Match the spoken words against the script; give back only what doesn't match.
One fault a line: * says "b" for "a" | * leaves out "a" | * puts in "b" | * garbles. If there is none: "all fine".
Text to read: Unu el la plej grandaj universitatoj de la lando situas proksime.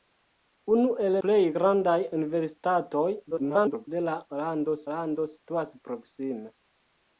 * leaves out "la"
* garbles
* puts in "lando"